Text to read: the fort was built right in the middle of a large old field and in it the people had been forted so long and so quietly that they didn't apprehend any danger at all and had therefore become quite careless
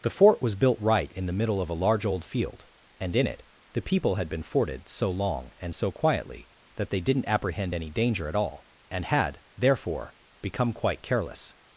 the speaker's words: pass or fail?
pass